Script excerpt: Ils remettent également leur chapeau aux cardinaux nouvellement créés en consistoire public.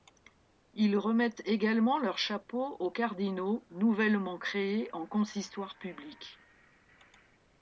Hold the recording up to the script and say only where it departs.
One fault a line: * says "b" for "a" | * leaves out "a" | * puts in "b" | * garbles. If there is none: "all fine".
all fine